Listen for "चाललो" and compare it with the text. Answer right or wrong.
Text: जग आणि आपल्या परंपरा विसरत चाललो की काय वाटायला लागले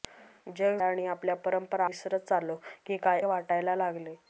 right